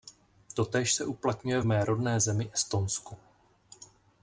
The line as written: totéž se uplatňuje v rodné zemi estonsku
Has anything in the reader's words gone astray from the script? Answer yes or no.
yes